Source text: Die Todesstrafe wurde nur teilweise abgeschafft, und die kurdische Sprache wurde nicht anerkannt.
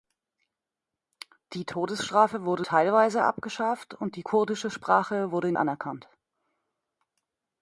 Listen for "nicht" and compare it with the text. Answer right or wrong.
wrong